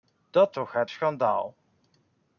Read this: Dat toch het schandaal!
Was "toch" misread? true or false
false